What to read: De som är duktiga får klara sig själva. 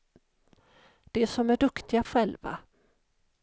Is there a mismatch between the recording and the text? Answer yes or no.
yes